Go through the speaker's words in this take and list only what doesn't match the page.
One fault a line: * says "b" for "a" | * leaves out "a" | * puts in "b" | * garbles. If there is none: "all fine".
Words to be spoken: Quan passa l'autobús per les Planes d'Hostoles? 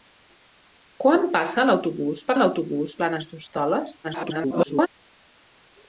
* says "l'autobús" for "les"
* garbles